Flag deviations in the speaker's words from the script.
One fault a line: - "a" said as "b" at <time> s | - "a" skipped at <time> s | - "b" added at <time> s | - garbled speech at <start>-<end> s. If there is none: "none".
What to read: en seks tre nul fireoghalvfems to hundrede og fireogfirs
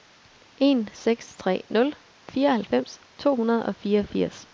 none